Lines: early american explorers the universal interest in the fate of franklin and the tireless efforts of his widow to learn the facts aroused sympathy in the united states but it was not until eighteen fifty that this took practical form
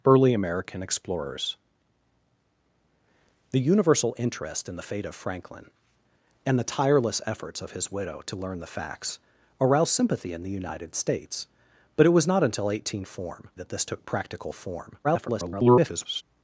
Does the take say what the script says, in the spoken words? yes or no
no